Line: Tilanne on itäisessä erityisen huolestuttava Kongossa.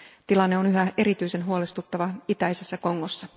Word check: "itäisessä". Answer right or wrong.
wrong